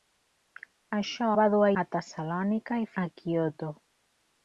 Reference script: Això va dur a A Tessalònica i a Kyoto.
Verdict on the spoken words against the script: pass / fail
pass